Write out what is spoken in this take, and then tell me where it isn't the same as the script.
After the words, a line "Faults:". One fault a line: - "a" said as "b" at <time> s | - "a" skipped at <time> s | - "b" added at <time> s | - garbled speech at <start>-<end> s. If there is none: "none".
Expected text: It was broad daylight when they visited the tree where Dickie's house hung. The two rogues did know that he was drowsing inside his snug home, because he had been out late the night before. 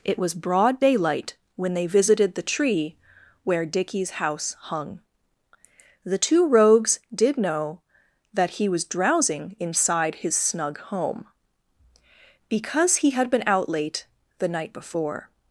It was broad daylight when they visited the tree where Dickie's house hung. The two rogues did know that he was drowsing inside his snug home, because he had been out late the night before.
Faults:
none